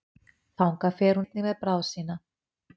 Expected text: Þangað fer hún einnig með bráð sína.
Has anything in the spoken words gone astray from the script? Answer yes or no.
yes